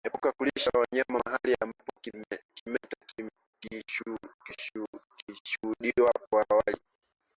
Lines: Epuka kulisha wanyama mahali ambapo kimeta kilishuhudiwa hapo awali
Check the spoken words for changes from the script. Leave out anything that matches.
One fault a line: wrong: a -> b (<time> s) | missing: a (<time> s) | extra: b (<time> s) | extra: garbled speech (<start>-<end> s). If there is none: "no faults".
no faults